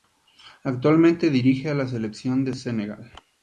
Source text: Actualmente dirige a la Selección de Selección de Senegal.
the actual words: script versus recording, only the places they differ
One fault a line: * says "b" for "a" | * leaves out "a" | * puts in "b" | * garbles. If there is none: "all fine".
* leaves out "Selección de"